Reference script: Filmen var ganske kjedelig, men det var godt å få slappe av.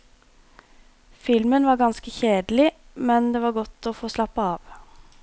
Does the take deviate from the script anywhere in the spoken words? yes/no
no